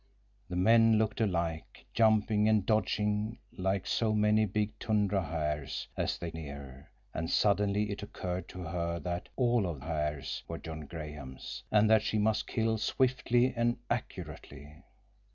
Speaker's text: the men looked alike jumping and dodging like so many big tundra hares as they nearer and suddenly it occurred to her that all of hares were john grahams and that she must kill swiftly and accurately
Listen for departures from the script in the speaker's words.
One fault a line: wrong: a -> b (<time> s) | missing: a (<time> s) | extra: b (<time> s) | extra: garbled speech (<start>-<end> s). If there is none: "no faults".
no faults